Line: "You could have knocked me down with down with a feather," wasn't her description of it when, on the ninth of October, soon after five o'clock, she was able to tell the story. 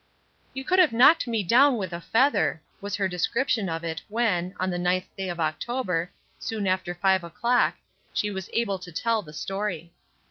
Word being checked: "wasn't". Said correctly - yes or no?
no